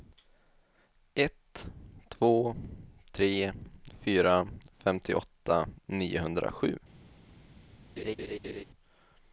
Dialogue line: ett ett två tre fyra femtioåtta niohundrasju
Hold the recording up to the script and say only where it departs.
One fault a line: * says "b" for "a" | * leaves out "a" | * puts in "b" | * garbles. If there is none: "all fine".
* leaves out "ett"